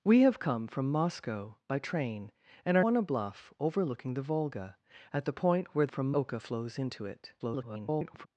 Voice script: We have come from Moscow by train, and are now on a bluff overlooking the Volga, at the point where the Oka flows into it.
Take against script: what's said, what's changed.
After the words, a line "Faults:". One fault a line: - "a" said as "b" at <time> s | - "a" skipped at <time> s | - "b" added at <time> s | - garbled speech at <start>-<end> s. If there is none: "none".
We have come from Moscow by train, and are on a bluff overlooking the Volga, at the point where from Oka flows into it. [garbled]
Faults:
- "now" skipped at 2.9 s
- "the" said as "from" at 5.9 s
- garbled speech at 7.4-8.3 s